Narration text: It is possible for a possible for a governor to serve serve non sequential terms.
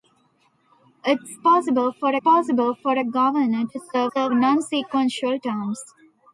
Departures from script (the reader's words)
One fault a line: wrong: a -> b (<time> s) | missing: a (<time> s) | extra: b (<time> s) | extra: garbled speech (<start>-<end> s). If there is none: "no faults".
no faults